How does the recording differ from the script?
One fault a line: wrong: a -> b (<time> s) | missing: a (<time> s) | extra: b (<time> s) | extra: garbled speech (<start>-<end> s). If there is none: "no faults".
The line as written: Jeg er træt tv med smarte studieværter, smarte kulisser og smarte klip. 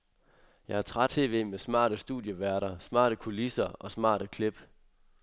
no faults